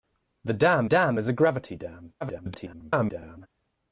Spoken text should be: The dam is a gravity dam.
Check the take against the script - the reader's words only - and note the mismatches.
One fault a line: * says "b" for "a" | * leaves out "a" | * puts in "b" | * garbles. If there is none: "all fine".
* puts in "dam"
* garbles